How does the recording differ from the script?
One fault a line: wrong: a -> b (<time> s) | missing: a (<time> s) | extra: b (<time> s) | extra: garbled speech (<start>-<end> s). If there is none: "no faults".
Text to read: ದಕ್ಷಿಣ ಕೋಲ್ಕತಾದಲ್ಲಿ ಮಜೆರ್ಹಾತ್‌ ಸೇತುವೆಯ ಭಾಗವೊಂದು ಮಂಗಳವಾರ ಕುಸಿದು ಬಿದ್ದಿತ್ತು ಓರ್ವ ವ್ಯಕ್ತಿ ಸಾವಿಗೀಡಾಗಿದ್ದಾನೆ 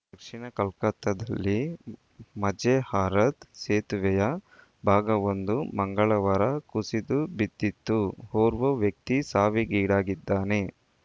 no faults